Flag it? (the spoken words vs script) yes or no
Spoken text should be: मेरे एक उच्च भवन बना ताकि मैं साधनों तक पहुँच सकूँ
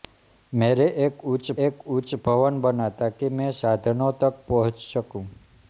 yes